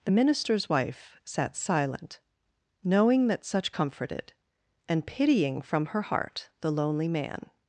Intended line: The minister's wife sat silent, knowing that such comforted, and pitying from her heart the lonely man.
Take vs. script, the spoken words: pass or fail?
pass